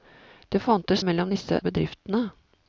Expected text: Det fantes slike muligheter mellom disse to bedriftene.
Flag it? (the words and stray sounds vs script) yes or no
yes